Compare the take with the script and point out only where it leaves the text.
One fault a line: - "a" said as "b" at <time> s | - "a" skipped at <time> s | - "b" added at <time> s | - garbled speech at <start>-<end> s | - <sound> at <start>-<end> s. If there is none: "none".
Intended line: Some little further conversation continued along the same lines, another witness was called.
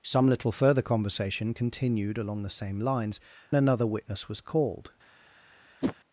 - whoosh at 5.8-6.0 s